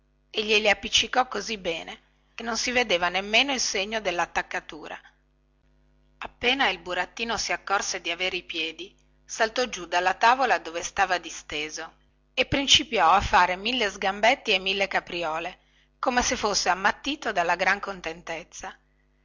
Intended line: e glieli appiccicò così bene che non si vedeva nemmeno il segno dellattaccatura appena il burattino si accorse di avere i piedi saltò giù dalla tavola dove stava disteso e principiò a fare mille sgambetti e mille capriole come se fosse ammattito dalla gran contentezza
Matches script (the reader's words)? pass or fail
pass